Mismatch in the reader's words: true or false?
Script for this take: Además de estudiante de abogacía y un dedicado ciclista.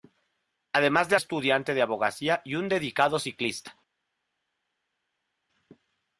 false